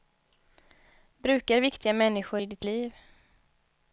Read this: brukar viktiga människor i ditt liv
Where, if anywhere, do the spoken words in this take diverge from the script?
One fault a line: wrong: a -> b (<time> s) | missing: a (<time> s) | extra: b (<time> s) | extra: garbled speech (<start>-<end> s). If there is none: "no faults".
no faults